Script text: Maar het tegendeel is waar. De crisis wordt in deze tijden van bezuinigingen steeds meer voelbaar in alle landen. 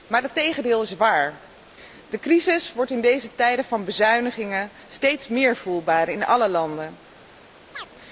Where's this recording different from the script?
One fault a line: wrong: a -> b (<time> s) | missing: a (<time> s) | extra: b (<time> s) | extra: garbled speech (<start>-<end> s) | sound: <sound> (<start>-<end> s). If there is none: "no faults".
sound: chirp (7.7-7.9 s)